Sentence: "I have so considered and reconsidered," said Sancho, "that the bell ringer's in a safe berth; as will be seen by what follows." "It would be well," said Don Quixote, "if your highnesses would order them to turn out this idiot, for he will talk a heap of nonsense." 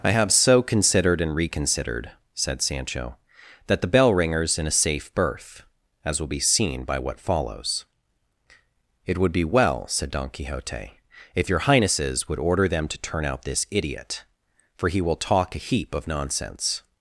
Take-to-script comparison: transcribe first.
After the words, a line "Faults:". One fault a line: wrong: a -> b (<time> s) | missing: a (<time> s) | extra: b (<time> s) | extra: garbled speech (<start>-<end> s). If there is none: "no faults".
"I have so considered and reconsidered," said Sancho, "that the bell ringer's in a safe berth; as will be seen by what follows." "It would be well," said Don Quixote, "if your highnesses would order them to turn out this idiot, for he will talk a heap of nonsense."
Faults:
no faults